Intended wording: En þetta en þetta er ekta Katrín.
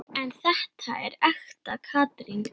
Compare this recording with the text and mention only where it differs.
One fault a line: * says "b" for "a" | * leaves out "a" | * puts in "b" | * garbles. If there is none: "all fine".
* leaves out "en þetta"